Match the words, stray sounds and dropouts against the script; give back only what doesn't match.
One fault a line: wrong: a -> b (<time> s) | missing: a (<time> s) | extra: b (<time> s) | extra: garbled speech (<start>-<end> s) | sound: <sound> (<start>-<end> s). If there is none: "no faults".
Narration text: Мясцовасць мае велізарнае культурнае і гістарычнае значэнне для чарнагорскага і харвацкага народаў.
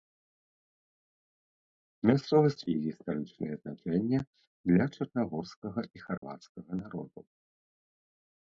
missing: мае велізарнае культурнае (2.6 s)
sound: dropout (6.2-6.2 s)